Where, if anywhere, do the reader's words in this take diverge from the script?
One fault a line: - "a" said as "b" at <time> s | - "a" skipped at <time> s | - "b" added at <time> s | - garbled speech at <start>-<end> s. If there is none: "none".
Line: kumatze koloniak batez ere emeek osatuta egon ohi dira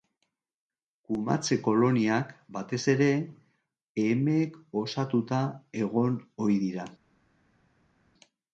none